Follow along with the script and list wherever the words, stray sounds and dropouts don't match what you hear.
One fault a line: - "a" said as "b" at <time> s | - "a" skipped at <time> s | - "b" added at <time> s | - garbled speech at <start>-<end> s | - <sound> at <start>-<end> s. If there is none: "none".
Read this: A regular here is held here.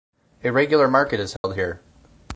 - "here" said as "market" at 0.9 s
- dropout at 1.4-1.4 s